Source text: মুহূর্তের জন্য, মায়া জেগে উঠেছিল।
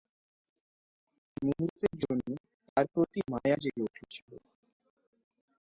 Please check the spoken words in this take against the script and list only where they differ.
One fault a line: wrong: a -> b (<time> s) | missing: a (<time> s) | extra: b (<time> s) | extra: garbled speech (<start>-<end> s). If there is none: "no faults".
extra: তার প্রতি (2.7 s)